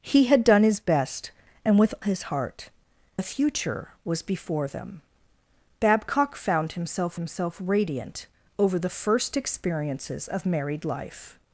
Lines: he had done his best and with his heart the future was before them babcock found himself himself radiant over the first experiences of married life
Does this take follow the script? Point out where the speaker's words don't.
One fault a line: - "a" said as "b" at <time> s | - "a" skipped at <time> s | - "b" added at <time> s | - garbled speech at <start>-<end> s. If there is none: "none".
none